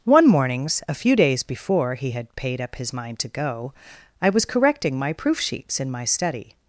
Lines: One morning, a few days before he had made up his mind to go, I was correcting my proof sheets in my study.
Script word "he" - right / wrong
right